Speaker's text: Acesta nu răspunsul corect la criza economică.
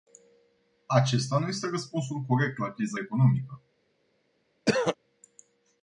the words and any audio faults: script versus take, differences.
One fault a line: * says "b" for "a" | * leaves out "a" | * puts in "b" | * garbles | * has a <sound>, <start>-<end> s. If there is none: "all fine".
* puts in "este"
* has a throat clearing, 4.7-5.0 s